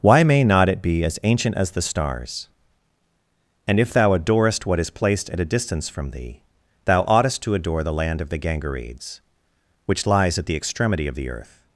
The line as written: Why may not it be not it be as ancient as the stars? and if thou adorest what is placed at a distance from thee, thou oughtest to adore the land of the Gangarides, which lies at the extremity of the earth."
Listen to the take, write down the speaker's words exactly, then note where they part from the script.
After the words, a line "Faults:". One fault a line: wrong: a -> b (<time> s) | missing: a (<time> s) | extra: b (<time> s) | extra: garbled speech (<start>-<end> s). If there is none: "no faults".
Why may not it be as ancient as the stars? and if thou adorest what is placed at a distance from thee, thou oughtest to adore the land of the Gangarides, which lies at the extremity of the earth."
Faults:
missing: not it be (1.0 s)